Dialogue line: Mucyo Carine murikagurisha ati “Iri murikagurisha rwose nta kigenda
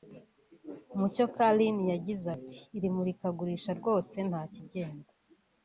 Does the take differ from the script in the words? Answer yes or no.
yes